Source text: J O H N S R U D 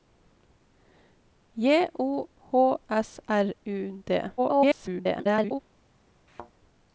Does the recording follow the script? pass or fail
fail